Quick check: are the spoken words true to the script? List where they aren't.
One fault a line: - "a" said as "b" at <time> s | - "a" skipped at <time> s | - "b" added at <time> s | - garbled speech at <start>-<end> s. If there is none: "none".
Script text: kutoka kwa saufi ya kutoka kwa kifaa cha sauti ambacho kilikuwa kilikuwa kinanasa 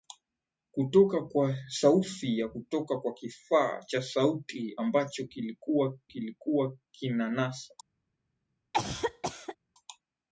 none